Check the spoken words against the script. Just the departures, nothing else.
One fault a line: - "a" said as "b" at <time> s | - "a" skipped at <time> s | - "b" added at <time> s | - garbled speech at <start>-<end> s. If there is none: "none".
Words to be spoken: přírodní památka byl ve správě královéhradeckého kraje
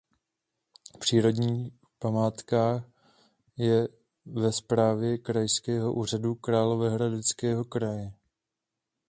- "byl" said as "je" at 3.6 s
- "krajského úřadu" added at 5.2 s